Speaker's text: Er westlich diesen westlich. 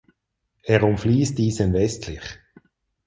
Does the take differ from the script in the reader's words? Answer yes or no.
yes